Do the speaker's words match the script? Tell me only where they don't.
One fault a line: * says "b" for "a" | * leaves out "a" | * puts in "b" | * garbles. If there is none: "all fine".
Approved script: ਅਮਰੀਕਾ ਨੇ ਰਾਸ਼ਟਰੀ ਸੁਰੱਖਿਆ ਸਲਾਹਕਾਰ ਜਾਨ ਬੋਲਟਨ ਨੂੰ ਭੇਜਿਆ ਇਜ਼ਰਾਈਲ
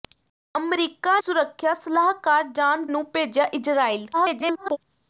* leaves out "ਨੇ ਰਾਸ਼ਟਰੀ"
* leaves out "ਬੋਲਟਨ"
* garbles